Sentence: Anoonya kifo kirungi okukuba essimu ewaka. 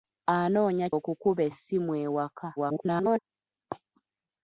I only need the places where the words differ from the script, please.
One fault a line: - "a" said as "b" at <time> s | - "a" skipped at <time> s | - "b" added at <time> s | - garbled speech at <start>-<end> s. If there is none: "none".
- "kifo kirungi" skipped at 0.9 s
- garbled speech at 2.6-3.2 s